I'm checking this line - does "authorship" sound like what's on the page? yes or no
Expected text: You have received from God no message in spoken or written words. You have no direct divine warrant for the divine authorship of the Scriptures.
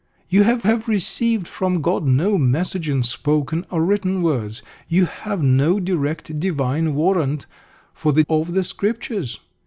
no